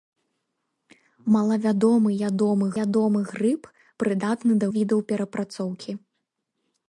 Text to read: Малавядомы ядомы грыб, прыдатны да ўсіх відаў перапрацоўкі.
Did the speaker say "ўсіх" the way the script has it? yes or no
no